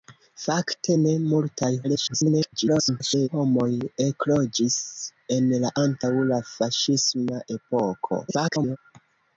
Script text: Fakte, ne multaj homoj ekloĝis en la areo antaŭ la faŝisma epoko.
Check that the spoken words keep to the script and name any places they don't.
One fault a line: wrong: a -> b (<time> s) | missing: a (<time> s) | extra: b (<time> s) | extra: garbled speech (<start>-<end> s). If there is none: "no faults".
extra: garbled speech (1.8-3.3 s)
missing: areo (5.7 s)
extra: garbled speech (8.3-8.8 s)